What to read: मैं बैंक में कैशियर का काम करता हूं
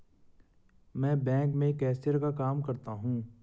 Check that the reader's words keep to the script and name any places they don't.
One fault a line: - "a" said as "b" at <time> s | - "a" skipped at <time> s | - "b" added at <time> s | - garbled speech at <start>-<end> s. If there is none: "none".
none